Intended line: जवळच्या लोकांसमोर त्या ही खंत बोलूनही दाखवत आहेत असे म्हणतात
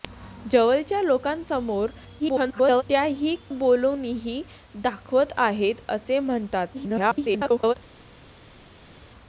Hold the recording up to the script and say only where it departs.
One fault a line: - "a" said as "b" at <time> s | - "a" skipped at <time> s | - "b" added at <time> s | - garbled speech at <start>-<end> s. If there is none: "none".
- garbled speech at 2.2-2.8 s
- "खंत" skipped at 3.4 s
- garbled speech at 6.7-7.7 s